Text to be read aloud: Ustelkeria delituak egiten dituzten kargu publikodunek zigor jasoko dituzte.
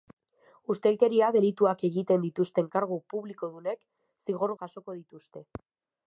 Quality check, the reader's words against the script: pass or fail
pass